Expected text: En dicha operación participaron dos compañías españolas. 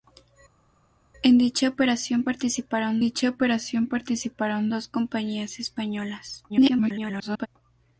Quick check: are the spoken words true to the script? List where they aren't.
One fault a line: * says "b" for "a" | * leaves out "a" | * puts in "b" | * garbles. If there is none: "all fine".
* puts in "dicha operación participaron"
* garbles